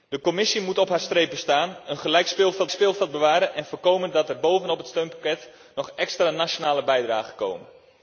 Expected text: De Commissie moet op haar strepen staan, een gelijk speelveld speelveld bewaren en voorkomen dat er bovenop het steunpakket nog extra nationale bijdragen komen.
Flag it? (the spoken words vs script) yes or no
no